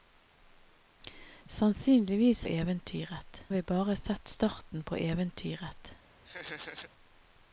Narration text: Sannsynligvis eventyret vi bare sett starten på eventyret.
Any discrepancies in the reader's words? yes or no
no